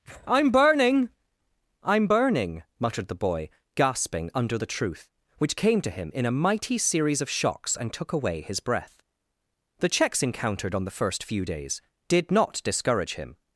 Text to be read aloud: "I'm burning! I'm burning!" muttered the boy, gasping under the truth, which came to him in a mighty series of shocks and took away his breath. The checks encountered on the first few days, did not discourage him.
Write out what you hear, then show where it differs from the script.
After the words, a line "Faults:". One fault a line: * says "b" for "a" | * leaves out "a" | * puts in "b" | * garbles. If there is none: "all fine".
"I'm burning! I'm burning!" muttered the boy, gasping under the truth, which came to him in a mighty series of shocks and took away his breath. The checks encountered on the first few days, did not discourage him.
Faults:
all fine